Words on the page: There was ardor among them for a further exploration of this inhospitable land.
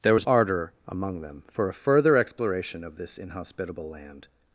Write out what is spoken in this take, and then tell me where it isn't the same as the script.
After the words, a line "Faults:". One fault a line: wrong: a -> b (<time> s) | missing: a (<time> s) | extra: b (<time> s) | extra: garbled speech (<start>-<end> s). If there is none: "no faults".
There was ardor among them for a further exploration of this inhospitable land.
Faults:
no faults